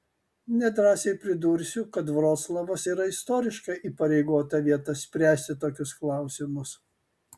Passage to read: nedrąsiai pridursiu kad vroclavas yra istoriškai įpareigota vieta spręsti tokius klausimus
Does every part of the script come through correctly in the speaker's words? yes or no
yes